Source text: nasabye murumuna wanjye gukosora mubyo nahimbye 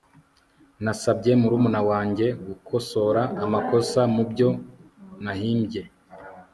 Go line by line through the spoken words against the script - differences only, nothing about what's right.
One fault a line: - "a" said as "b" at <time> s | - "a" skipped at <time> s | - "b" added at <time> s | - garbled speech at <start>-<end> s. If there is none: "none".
- "amakosa" added at 3.4 s